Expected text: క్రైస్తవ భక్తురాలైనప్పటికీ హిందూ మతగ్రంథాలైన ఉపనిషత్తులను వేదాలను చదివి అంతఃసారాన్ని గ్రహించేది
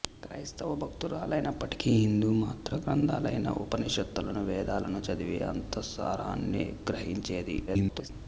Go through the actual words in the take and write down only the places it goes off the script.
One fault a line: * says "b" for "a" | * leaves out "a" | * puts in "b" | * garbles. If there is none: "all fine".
* garbles